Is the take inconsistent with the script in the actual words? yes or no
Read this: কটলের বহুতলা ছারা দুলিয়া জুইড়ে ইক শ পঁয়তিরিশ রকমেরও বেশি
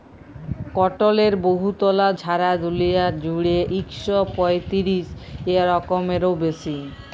no